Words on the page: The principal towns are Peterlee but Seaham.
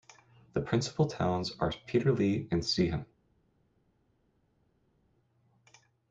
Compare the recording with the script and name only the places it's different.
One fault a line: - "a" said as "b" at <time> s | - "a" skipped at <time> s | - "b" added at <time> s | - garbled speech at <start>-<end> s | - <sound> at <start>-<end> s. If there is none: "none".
- "but" said as "and" at 2.5 s